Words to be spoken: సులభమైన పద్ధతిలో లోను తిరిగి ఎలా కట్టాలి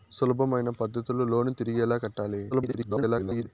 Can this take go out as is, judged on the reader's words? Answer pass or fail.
fail